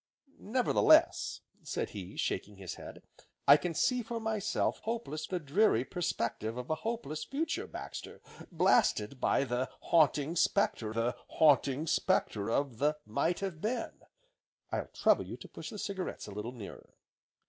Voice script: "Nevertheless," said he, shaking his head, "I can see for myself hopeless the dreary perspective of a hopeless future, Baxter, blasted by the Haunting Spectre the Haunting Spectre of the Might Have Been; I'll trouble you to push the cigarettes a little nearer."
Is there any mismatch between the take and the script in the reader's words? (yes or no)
no